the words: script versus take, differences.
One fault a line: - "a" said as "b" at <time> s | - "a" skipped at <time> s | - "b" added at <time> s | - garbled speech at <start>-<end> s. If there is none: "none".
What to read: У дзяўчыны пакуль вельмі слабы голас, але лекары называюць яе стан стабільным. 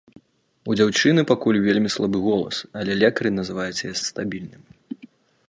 - "стан" skipped at 3.9 s